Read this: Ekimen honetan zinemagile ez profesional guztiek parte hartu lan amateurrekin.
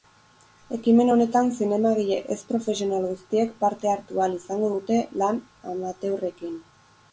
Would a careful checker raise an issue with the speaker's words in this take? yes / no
yes